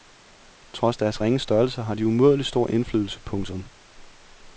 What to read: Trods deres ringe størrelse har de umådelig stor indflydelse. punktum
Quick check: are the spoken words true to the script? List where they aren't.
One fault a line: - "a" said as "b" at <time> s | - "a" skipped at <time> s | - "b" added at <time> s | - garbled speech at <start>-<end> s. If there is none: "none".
none